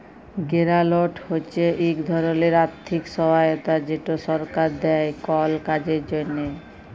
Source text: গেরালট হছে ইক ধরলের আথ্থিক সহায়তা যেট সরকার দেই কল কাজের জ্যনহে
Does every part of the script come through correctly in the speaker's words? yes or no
yes